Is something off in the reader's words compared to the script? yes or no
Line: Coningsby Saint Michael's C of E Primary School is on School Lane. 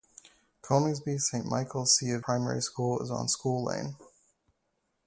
yes